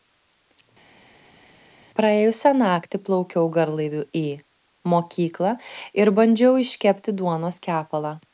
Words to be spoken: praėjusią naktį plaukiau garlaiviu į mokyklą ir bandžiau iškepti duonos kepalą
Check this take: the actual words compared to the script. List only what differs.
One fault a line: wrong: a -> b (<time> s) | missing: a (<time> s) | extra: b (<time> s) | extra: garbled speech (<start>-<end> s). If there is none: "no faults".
no faults